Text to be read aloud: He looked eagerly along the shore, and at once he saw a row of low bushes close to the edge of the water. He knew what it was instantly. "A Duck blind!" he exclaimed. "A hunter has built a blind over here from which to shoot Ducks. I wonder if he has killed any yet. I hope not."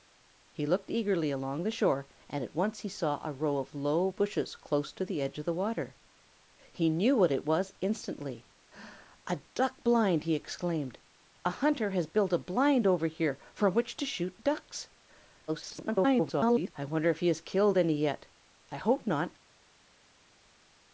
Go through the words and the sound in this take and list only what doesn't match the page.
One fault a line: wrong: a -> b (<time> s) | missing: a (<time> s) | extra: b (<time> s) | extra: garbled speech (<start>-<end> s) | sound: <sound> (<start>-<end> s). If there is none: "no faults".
extra: garbled speech (15.5-16.7 s)